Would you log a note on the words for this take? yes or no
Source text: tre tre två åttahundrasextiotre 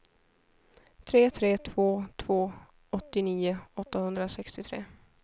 yes